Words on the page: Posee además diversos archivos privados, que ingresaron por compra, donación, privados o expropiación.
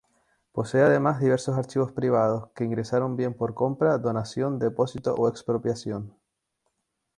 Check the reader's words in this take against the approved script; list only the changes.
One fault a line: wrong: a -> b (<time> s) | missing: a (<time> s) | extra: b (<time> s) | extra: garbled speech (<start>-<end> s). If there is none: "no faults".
extra: bien (3.2 s)
wrong: privados -> depósito (4.6 s)